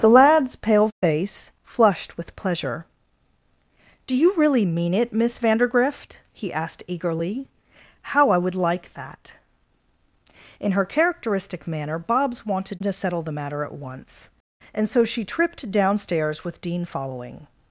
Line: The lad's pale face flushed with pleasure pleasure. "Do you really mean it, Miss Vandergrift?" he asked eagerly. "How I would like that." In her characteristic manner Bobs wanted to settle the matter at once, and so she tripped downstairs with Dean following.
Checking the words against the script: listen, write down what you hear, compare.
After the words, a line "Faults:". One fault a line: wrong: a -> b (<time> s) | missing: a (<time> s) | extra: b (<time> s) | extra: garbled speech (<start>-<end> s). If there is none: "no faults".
The lad's pale face flushed with pleasure. "Do you really mean it, Miss Vandergrift?" he asked eagerly. "How I would like that." In her characteristic manner Bobs wanted to settle the matter at once, and so she tripped downstairs with Dean following.
Faults:
missing: pleasure (2.9 s)